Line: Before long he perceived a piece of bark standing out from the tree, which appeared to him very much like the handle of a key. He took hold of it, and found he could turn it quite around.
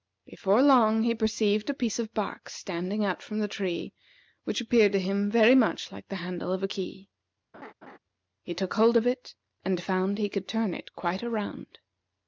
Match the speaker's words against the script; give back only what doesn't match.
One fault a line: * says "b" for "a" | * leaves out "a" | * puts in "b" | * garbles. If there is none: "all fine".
all fine